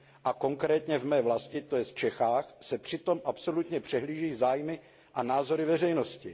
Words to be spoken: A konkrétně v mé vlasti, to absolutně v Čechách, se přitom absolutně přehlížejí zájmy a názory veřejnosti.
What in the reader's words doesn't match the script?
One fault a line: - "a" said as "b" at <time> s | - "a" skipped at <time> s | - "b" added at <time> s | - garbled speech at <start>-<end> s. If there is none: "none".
- "absolutně" said as "jest" at 1.8 s